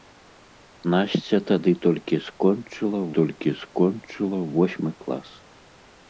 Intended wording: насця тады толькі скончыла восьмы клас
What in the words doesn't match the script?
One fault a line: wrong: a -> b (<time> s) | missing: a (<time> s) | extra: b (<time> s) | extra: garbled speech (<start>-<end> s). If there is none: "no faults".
extra: толькі скончыла (3.2 s)